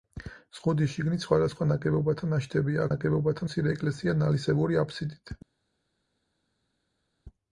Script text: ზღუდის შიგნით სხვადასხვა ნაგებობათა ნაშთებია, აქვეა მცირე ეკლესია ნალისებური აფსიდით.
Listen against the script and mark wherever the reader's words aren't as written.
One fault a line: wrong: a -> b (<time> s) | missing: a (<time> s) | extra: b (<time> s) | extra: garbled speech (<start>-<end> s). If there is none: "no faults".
wrong: აქვეა -> ნაგებობათა (2.9 s)